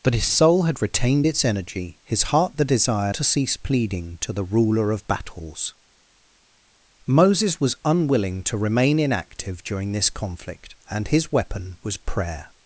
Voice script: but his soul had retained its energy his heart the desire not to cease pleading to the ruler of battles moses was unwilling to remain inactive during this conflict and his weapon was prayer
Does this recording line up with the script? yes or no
no